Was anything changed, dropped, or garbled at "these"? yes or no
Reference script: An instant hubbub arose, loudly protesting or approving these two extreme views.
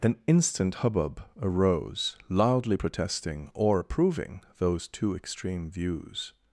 yes